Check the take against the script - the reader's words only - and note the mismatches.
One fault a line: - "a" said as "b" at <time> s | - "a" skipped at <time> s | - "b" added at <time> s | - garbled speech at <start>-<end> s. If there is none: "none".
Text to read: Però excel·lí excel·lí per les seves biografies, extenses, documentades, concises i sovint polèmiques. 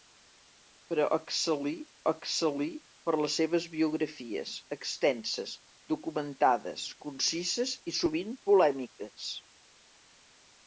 none